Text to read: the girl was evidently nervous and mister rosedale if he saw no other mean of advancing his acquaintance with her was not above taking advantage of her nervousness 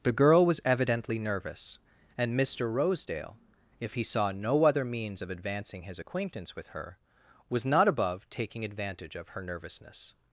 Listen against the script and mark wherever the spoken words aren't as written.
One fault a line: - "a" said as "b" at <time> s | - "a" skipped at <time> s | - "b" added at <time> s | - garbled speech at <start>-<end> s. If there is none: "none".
- "mean" said as "means" at 4.8 s